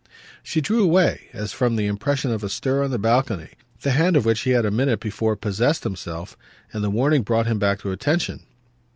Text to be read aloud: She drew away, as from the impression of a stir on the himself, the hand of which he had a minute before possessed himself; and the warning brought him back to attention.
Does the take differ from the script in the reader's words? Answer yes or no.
yes